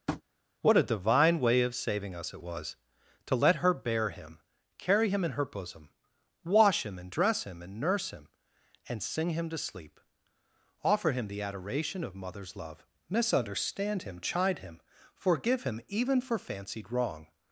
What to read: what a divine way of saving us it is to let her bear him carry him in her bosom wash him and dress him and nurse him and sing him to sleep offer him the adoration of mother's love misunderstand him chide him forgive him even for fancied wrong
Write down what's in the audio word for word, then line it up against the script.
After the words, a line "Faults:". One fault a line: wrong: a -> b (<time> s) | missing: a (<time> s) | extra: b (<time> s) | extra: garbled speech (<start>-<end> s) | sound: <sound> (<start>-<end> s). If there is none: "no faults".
what a divine way of saving us it was to let her bear him carry him in her bosom wash him and dress him and nurse him and sing him to sleep offer him the adoration of mother's love misunderstand him chide him forgive him even for fancied wrong
Faults:
sound: tap (0.1-0.2 s)
wrong: is -> was (2.4 s)